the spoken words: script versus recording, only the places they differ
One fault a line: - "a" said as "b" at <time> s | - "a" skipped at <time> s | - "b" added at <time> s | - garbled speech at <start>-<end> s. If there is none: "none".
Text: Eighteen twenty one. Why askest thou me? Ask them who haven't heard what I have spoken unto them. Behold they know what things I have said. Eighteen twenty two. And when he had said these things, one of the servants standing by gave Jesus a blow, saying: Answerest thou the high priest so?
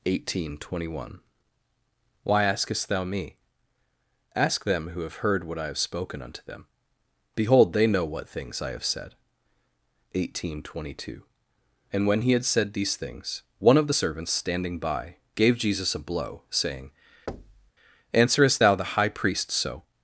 - "haven't" said as "have" at 5.0 s